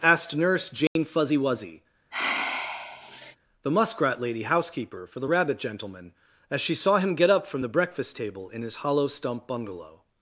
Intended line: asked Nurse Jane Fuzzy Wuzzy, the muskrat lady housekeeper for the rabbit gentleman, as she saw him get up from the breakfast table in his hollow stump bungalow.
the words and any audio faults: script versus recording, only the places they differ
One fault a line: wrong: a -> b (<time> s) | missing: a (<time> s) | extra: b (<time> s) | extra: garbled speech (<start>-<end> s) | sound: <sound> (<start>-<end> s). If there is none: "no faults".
sound: dropout (0.9-1.0 s)
sound: sigh (2.1-3.4 s)